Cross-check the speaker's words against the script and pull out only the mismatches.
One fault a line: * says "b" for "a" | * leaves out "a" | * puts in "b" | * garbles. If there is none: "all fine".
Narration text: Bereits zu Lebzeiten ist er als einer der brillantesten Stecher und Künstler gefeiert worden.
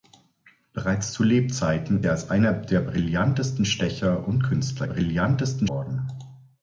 * leaves out "ist"
* says "brillantesten" for "gefeiert"